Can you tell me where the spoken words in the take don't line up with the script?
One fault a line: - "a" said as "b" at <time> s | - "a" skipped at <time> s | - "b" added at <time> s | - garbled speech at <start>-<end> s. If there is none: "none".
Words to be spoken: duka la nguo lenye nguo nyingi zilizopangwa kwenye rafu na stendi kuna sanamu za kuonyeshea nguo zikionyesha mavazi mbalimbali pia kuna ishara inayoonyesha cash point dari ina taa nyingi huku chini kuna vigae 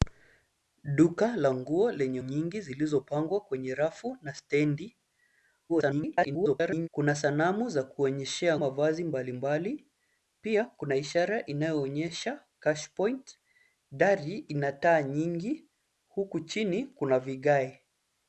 - "nguo" skipped at 2.2 s
- garbled speech at 5.7-6.9 s
- "nguo zikionyesha" skipped at 8.6 s